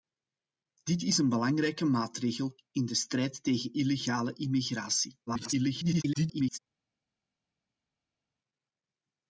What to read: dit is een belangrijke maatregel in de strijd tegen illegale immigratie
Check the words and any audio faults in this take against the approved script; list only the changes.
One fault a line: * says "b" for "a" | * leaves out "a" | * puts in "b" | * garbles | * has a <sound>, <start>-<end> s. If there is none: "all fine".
* garbles